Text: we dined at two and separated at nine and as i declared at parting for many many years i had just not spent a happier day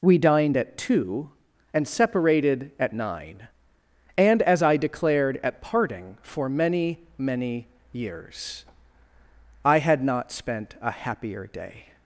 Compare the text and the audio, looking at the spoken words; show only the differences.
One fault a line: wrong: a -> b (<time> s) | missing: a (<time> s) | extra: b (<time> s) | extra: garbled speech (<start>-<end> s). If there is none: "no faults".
missing: just (10.0 s)